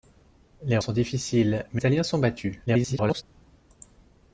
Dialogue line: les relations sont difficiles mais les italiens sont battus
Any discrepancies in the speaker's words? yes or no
yes